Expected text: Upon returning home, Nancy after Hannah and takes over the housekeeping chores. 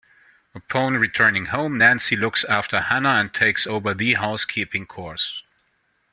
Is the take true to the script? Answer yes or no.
no